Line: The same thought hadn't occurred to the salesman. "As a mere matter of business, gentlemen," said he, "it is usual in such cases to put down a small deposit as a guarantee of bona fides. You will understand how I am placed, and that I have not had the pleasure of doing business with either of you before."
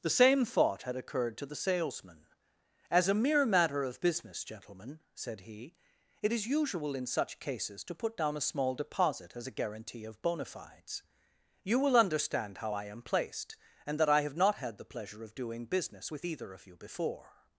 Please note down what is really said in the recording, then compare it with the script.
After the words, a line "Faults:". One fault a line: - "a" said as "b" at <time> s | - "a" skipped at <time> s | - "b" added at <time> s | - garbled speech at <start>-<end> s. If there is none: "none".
The same thought had occurred to the salesman. "As a mere matter of business, gentlemen," said he, "it is usual in such cases to put down a small deposit as a guarantee of bona fides. You will understand how I am placed, and that I have not had the pleasure of doing business with either of you before."
Faults:
- "hadn't" said as "had" at 0.8 s